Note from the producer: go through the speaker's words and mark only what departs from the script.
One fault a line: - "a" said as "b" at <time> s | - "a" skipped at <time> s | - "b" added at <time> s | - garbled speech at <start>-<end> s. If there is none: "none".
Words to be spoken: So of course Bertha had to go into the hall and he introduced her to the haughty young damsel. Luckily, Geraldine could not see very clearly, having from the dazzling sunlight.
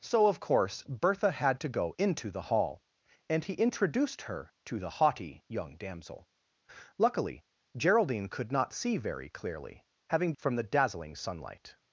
none